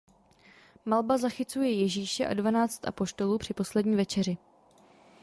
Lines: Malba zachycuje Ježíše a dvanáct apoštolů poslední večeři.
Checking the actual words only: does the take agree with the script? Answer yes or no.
no